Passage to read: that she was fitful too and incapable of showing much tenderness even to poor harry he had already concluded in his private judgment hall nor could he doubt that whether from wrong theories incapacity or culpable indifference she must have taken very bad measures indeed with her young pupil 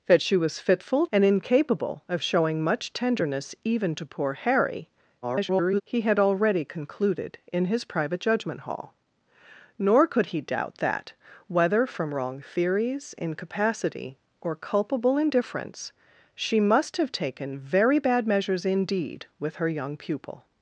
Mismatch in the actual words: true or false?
true